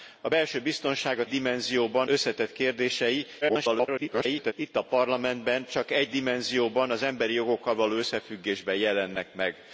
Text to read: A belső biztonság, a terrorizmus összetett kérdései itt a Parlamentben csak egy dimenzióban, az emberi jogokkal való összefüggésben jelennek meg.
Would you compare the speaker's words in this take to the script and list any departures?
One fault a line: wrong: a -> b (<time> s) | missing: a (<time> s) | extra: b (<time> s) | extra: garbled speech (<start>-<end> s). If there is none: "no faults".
wrong: terrorizmus -> dimenzióban (1.3 s)
extra: garbled speech (3.4-4.5 s)